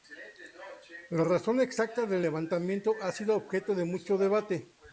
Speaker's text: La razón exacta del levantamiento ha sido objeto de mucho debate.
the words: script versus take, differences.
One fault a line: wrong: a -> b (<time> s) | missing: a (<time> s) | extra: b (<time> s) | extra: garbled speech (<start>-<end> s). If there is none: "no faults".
no faults